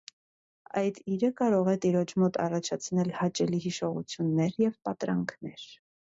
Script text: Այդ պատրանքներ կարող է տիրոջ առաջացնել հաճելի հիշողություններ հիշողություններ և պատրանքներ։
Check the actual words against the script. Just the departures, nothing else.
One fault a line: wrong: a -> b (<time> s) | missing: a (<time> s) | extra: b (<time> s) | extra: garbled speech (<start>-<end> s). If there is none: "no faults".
wrong: պատրանքներ -> իրը (1.1 s)
extra: մոտ (2.2 s)
missing: հիշողություններ (4.6 s)